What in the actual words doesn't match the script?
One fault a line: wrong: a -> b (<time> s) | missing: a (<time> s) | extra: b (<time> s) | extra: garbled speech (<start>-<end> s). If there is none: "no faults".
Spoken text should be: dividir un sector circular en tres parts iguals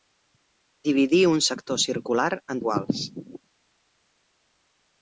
missing: tres parts (2.6 s)